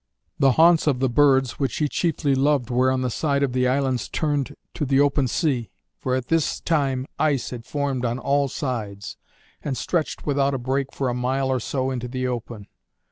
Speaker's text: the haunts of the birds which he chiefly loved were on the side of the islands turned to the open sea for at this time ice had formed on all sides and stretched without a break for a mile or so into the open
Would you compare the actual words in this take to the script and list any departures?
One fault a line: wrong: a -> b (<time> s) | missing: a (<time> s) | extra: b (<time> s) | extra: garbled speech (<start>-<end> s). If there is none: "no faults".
no faults